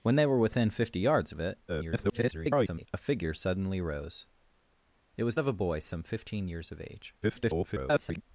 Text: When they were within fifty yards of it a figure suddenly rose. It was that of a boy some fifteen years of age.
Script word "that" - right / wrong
wrong